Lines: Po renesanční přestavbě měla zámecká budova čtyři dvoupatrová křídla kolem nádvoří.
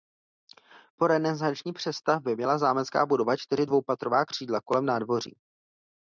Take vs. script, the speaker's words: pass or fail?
pass